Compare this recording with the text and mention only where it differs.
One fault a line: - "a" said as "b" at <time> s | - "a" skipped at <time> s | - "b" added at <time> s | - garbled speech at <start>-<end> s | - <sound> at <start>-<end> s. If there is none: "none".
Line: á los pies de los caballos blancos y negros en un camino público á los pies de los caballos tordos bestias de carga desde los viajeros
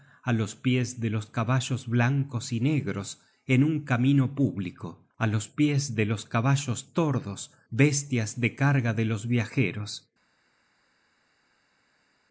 - "desde" said as "de" at 8.9 s